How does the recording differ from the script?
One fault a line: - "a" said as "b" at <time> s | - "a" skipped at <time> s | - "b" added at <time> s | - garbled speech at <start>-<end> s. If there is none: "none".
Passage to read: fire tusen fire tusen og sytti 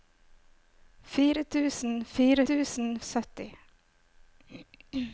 none